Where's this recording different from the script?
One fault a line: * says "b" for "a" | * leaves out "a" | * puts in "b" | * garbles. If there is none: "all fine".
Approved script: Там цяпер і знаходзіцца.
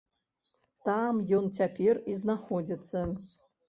* puts in "ён"